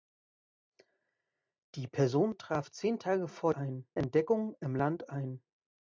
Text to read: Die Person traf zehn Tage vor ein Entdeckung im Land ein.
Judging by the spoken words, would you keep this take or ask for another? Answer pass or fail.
pass